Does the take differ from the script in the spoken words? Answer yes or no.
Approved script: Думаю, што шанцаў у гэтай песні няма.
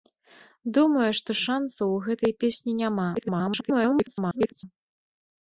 yes